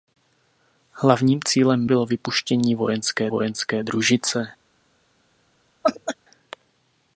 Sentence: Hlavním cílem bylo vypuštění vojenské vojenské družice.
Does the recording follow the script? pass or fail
pass